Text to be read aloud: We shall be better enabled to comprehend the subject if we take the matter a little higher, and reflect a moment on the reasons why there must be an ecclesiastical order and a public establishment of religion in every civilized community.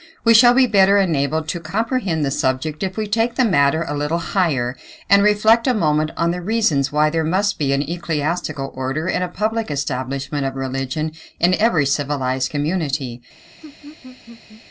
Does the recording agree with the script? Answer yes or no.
yes